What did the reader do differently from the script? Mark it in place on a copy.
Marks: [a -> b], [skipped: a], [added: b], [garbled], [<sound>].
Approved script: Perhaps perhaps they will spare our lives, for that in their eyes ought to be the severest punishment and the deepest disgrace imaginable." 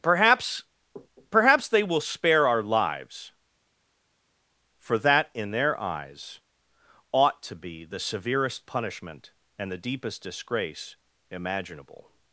Perhaps perhaps they will spare our lives, for that in their eyes ought to be the severest punishment and the deepest disgrace imaginable."